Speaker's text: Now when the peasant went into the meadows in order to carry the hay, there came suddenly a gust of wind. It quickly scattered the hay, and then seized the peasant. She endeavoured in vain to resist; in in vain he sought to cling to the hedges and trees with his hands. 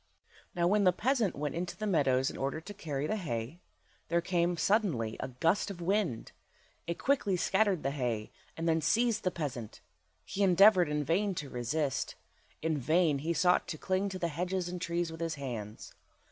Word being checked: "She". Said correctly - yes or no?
no